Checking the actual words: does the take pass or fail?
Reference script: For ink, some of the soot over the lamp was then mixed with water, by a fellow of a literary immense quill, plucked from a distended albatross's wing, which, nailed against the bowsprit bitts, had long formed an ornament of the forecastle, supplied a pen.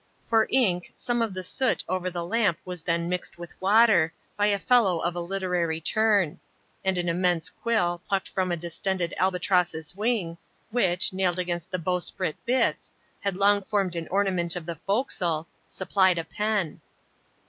fail